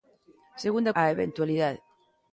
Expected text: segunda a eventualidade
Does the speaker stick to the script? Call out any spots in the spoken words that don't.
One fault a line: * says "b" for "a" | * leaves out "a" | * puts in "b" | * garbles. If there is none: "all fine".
all fine